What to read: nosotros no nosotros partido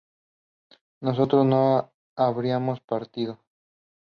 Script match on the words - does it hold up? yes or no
no